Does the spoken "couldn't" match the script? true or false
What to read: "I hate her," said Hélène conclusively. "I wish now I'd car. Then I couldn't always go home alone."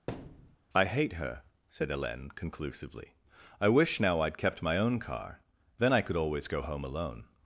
false